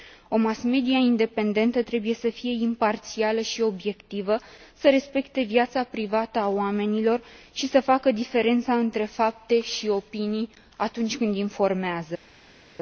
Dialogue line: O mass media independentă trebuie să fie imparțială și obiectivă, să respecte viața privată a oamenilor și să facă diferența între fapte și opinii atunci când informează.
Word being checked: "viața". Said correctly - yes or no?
yes